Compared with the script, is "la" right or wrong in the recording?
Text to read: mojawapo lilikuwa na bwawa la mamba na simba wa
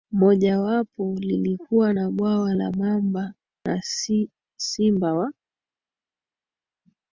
right